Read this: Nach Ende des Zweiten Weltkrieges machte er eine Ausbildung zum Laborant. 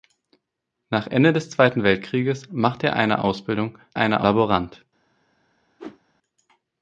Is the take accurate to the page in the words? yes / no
no